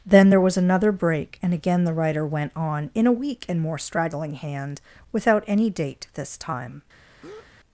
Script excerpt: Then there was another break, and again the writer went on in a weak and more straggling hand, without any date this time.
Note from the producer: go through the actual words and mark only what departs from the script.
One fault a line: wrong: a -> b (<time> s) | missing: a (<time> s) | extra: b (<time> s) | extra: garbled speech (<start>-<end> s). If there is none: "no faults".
no faults